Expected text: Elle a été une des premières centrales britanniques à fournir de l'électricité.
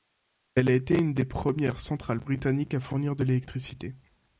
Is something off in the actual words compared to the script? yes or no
no